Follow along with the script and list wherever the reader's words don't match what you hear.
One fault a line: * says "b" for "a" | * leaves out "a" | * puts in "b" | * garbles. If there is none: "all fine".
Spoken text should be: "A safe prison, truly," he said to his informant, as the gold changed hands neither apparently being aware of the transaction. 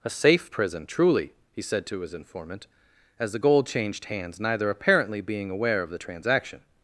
all fine